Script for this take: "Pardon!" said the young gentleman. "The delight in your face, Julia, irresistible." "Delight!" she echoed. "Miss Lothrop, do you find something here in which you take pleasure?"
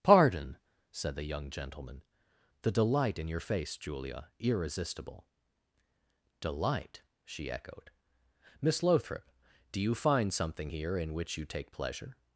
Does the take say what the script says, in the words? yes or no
yes